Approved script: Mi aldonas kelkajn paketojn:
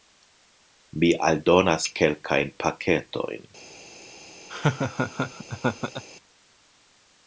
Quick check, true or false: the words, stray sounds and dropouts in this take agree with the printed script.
false